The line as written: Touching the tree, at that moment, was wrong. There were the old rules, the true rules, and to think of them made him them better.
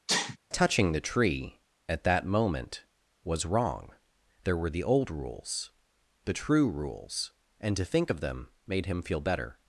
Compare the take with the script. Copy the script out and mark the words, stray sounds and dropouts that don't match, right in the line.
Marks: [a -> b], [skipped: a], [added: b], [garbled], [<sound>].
[sneeze] Touching the tree, at that moment, was wrong. There were the old rules, the true rules, and to think of them made him [them -> feel] better.